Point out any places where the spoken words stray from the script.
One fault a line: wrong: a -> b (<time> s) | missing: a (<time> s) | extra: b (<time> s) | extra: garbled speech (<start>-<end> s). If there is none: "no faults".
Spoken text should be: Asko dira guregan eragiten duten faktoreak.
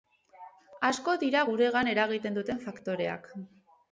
no faults